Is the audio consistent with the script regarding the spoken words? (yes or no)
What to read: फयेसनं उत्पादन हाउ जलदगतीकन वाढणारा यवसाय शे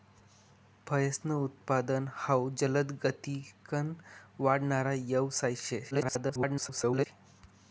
no